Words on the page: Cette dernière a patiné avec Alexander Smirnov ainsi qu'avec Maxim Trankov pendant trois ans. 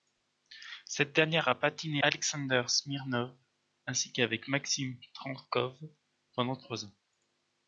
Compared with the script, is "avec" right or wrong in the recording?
wrong